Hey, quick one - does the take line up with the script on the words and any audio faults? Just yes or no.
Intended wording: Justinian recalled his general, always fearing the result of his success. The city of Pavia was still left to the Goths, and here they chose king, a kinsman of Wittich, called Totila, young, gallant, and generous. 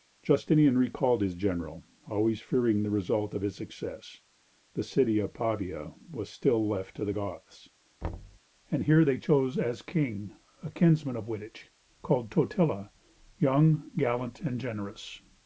no